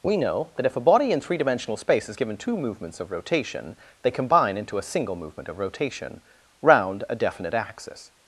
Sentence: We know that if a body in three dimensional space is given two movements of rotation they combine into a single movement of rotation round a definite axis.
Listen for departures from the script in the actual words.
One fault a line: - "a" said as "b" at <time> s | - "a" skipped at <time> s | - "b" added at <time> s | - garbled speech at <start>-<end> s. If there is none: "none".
none